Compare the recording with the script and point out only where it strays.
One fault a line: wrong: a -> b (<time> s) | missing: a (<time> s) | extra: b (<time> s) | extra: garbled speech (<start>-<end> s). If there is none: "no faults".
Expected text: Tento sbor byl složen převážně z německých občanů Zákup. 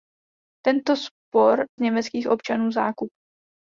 missing: byl složen převážně (1.6 s)